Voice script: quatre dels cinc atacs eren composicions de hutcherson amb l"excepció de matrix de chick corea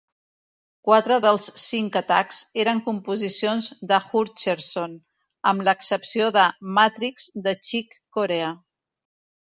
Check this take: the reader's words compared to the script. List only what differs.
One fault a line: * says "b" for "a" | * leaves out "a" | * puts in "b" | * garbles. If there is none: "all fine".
all fine